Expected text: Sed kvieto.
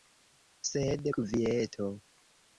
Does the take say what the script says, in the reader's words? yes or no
yes